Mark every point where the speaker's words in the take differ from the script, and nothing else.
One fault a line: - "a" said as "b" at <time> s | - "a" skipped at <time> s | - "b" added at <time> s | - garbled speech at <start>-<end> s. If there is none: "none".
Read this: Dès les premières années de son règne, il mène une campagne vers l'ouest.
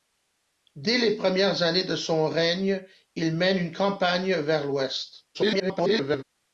- garbled speech at 5.3-6.2 s